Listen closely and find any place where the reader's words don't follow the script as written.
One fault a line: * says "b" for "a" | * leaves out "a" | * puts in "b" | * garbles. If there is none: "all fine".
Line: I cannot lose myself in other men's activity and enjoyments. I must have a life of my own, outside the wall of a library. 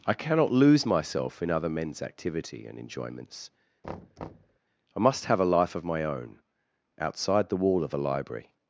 all fine